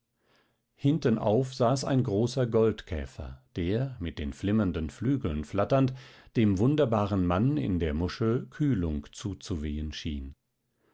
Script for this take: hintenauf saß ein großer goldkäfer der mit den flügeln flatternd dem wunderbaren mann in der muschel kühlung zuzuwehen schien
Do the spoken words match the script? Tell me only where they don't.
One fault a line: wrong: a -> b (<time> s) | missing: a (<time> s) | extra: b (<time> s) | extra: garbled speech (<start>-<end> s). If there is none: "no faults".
extra: flimmernden (4.3 s)